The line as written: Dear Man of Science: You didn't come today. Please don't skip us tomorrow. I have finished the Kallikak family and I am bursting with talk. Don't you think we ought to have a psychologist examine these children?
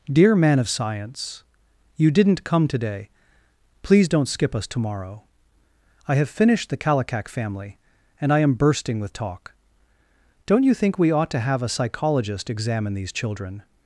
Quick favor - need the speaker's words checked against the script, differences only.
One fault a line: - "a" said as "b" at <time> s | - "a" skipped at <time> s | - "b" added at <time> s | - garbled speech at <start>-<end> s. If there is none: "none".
none